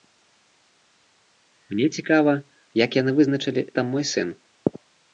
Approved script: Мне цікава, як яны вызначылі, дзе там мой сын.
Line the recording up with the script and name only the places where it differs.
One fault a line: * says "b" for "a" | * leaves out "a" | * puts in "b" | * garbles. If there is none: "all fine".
* leaves out "дзе"